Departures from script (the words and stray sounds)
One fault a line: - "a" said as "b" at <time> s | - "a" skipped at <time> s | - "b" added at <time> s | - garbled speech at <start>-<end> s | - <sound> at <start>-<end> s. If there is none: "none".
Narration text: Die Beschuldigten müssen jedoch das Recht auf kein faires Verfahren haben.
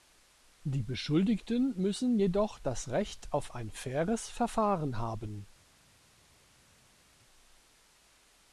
- "kein" said as "ein" at 3.5 s